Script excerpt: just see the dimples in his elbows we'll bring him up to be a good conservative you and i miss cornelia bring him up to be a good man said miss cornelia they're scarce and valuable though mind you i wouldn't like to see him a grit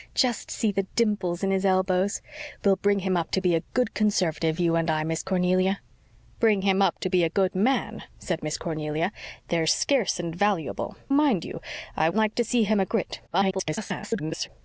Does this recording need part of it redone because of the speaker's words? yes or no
yes